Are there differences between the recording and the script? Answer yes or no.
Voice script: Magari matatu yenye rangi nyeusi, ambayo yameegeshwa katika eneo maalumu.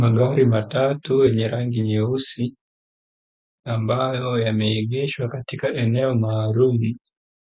no